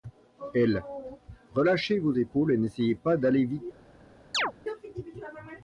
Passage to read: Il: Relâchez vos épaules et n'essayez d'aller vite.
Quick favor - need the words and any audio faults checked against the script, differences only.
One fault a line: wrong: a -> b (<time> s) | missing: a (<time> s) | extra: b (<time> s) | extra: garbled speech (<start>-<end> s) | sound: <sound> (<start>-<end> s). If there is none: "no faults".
wrong: Il -> Elle (0.6 s)
extra: pas (2.9 s)
sound: chirp (4.3-4.5 s)